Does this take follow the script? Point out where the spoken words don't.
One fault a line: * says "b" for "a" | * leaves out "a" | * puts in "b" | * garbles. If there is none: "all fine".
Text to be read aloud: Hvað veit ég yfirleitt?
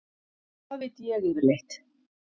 all fine